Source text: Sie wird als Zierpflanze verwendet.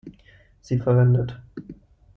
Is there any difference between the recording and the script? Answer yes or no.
yes